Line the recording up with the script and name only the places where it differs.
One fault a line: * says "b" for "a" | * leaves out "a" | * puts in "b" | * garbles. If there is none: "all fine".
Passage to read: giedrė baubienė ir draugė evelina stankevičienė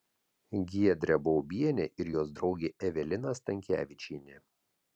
* puts in "jos"